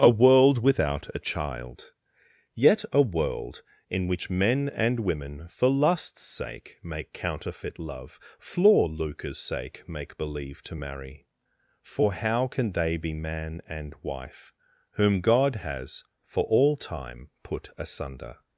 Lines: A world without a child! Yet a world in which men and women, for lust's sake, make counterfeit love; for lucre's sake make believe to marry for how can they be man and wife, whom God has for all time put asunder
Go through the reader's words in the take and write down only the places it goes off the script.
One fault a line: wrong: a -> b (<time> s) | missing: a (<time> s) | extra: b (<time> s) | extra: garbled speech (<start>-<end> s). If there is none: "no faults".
no faults